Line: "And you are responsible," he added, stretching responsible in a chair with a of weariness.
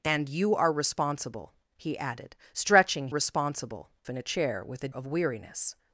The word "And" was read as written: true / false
true